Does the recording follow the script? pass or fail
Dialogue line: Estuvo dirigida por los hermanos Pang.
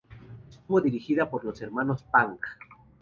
pass